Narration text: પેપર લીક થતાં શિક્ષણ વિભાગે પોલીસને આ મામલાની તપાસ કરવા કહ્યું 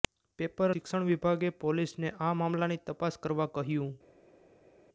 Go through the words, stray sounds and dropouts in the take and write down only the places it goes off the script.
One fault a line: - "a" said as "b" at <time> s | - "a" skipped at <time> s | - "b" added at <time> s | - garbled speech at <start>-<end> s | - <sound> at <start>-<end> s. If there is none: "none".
- "લીક થતાં" skipped at 0.7 s